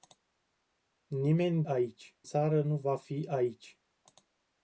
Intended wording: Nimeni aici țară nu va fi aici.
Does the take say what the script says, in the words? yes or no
yes